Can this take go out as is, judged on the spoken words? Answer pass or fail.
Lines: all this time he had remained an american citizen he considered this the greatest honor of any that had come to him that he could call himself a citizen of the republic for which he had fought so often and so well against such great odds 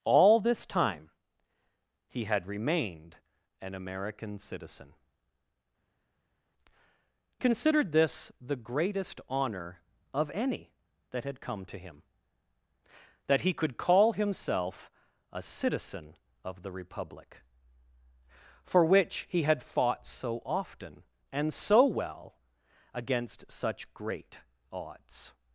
fail